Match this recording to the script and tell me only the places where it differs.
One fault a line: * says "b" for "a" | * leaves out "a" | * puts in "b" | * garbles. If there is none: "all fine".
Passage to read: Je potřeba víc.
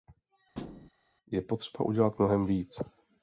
* puts in "udělat mnohem"